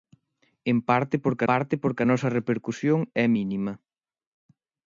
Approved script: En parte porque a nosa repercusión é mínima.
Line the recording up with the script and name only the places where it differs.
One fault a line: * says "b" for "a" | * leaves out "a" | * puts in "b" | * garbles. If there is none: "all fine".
* puts in "parte porque"